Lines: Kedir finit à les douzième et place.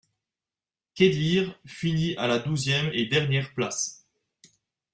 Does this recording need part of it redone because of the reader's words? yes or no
yes